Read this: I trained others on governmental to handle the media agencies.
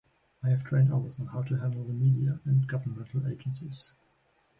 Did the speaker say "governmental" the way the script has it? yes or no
no